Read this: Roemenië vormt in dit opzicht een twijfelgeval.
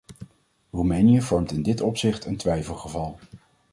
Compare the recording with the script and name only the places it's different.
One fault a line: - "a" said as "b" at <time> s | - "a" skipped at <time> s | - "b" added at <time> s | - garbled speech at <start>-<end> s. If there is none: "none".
none